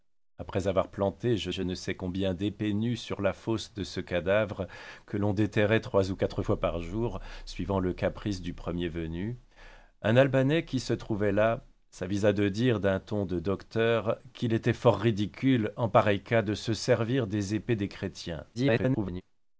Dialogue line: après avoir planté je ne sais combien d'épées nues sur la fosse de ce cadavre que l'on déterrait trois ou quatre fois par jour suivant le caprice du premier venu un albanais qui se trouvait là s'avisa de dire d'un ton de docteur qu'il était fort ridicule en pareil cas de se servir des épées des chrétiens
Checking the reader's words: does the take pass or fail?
fail